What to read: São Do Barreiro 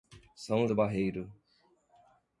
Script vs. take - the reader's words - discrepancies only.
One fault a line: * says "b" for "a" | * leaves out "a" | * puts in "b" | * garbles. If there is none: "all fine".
all fine